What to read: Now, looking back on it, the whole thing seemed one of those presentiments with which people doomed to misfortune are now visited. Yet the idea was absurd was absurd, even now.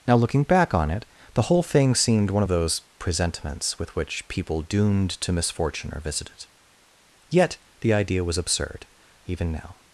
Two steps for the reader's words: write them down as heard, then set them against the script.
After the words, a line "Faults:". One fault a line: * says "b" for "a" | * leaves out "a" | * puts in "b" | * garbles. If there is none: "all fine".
Now, looking back on it, the whole thing seemed one of those presentiments with which people doomed to misfortune are visited. Yet the idea was absurd, even now.
Faults:
* leaves out "now"
* leaves out "was absurd"